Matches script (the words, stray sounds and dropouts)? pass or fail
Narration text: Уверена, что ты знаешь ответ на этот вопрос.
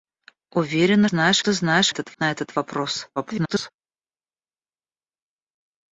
fail